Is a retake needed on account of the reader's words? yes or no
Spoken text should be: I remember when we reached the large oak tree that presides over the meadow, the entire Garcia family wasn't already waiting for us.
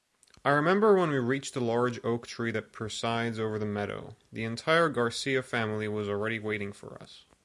yes